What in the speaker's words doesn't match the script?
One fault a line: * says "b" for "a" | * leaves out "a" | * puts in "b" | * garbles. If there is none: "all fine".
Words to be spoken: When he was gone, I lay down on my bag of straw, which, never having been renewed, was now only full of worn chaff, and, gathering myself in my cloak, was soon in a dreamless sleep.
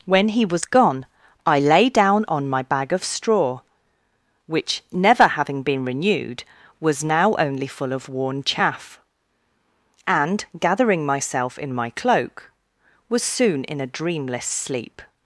all fine